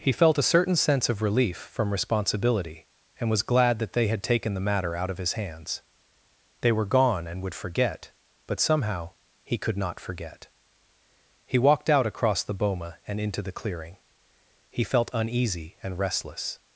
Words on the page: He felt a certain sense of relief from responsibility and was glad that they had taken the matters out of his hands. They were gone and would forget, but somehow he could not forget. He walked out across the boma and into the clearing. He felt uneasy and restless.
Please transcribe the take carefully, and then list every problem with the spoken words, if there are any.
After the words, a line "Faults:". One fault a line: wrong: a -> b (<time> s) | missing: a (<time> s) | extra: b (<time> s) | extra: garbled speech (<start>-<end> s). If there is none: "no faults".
He felt a certain sense of relief from responsibility and was glad that they had taken the matter out of his hands. They were gone and would forget, but somehow he could not forget. He walked out across the boma and into the clearing. He felt uneasy and restless.
Faults:
wrong: matters -> matter (4.7 s)